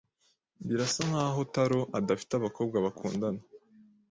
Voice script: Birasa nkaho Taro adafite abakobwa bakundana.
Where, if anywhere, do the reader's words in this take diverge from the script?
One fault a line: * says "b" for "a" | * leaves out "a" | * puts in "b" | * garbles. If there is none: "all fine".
all fine